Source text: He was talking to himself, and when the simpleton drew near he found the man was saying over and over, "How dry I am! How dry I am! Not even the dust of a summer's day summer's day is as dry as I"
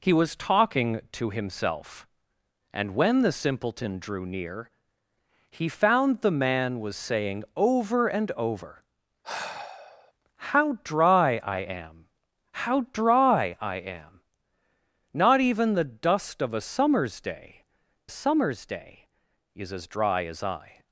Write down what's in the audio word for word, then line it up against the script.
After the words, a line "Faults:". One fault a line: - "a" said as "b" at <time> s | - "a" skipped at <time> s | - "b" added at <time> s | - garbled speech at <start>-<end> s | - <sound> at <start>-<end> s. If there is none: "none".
He was talking to himself, and when the simpleton drew near he found the man was saying over and over, "How dry I am! How dry I am! Not even the dust of a summer's day summer's day is as dry as I"
Faults:
- sigh at 9.2-10.1 s